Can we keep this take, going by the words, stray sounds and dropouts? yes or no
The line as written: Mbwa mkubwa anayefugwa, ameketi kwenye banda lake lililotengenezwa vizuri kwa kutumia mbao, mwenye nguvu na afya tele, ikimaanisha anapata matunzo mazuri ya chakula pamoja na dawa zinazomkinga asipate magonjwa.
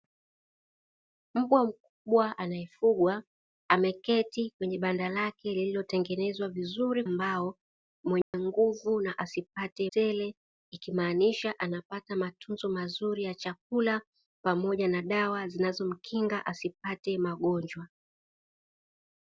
no